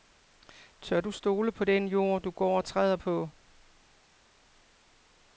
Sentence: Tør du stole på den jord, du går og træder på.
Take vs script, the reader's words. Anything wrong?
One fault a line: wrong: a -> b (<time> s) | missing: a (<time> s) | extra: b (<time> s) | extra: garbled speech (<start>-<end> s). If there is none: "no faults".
no faults